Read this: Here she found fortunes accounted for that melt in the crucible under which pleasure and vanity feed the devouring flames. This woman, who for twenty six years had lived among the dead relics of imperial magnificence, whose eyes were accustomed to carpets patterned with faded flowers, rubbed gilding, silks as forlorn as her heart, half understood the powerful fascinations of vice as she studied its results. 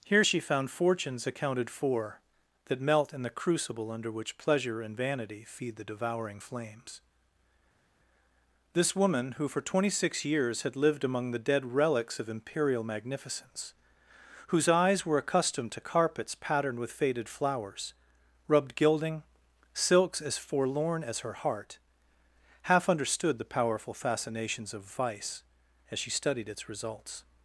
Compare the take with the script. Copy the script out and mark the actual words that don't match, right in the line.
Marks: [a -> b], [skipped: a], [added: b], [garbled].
Here she found fortunes accounted for that melt in the crucible under which pleasure and vanity feed the devouring flames. This woman, who for twenty six years had lived among the dead relics of imperial magnificence, whose eyes were accustomed to carpets patterned with faded flowers, rubbed gilding, silks as forlorn as her heart, half understood the powerful fascinations of vice as she studied its results.